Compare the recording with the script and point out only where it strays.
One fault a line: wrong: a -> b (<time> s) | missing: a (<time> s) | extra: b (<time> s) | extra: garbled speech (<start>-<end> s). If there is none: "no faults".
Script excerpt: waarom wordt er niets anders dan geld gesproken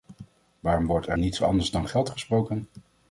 no faults